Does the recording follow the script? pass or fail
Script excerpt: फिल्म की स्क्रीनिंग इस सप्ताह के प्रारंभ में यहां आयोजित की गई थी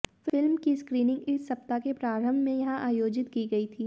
pass